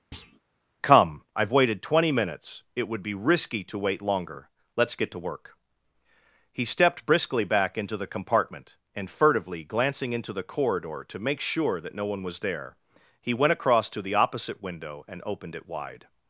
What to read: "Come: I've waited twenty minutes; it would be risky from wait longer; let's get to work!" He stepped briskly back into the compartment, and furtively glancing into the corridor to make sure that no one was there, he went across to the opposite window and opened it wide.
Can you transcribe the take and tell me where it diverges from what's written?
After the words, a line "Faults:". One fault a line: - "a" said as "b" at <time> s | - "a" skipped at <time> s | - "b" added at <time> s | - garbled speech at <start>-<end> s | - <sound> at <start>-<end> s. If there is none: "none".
"Come: I've waited twenty minutes; it would be risky to wait longer; let's get to work!" He stepped briskly back into the compartment, and furtively glancing into the corridor to make sure that no one was there, he went across to the opposite window and opened it wide.
Faults:
- thud at 0.1-0.4 s
- "from" said as "to" at 3.6 s